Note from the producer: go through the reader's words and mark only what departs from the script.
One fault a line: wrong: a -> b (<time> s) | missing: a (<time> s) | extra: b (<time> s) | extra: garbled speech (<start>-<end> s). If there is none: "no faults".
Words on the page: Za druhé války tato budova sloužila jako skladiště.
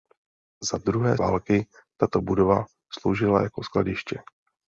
no faults